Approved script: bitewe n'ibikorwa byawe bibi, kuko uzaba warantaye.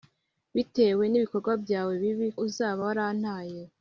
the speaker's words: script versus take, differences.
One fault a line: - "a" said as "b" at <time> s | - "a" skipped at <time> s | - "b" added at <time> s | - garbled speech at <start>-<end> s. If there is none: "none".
- "kuko" skipped at 2.3 s